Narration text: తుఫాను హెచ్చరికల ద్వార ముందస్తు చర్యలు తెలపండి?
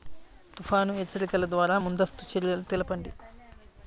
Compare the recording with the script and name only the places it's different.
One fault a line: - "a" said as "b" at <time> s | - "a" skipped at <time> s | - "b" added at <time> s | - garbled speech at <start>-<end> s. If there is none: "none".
none